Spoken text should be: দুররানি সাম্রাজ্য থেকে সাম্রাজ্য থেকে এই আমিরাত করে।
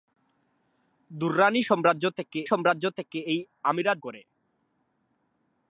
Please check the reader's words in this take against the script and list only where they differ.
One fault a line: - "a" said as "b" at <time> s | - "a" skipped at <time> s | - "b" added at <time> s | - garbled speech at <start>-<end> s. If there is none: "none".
none